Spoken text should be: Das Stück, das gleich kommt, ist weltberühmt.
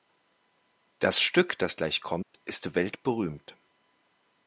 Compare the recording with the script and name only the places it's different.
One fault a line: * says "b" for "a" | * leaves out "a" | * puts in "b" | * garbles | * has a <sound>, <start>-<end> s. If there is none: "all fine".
* has a dropout, 2.2-2.3 s